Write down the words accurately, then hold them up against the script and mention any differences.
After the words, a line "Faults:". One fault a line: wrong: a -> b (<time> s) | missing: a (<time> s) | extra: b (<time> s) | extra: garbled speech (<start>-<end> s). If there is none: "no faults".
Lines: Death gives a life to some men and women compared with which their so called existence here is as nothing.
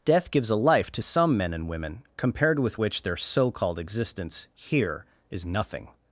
Death gives a life to some men and women compared with which their so called existence here is nothing.
Faults:
missing: as (5.4 s)